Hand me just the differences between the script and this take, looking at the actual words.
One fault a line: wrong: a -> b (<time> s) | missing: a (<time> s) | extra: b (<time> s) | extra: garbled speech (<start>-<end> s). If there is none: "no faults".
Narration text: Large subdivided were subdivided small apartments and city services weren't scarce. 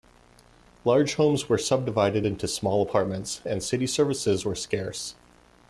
wrong: subdivided -> homes (1.1 s)
extra: into (2.2 s)
wrong: weren't -> were (4.4 s)